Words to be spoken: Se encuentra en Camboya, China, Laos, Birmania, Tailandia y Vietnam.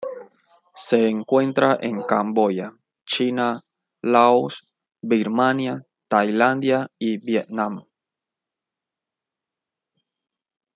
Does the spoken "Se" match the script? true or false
true